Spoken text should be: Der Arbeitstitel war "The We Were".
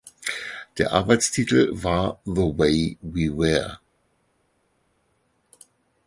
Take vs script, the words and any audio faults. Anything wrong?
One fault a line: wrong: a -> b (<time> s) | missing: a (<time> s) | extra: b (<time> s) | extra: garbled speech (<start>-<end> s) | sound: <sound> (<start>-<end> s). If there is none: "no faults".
extra: Way (2.5 s)